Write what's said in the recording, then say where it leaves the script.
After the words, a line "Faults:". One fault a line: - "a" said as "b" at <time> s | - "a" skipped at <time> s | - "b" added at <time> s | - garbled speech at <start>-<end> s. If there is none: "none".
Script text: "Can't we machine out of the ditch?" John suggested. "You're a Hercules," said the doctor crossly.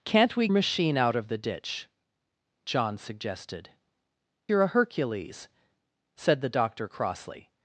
"Can't we machine out of the ditch?" John suggested. "You're a Hercules," said the doctor crossly.
Faults:
none